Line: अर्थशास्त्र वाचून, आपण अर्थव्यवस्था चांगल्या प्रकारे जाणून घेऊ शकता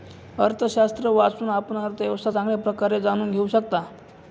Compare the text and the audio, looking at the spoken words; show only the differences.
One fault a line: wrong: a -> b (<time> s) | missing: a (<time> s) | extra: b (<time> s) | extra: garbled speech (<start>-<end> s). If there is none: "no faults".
no faults